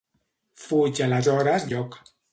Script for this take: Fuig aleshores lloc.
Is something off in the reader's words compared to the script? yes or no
no